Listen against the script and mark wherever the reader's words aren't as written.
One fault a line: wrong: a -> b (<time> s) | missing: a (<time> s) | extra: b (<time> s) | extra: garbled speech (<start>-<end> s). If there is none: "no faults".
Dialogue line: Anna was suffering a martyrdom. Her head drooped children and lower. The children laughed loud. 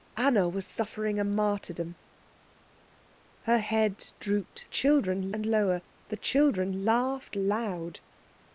no faults